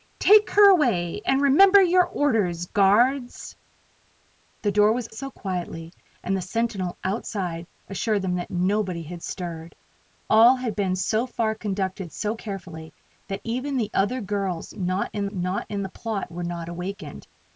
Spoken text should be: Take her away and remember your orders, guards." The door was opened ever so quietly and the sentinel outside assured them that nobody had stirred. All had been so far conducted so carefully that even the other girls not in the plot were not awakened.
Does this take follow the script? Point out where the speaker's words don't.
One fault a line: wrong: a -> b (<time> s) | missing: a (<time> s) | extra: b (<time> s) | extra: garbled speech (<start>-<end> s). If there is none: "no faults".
missing: opened ever (5.1 s)
extra: not in (15.3 s)